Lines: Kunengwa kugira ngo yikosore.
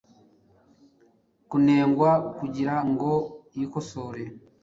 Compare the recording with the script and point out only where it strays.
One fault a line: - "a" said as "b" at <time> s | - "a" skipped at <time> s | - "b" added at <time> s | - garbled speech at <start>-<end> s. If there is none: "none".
none